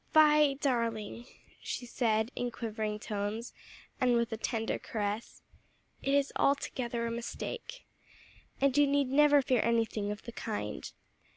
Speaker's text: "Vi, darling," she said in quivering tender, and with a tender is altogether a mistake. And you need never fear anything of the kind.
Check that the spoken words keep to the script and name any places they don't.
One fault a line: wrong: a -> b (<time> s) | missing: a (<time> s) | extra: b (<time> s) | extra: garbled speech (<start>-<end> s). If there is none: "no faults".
wrong: tender -> tones (3.0 s)
extra: caress it (4.8 s)